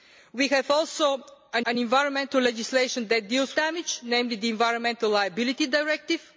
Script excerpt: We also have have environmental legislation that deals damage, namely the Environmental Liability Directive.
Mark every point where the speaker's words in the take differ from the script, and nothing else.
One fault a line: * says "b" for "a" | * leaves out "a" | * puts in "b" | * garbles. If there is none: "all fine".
all fine